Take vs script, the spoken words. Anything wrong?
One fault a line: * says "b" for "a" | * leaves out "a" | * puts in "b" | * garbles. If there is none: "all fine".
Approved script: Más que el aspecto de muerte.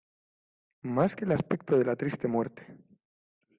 * puts in "la triste"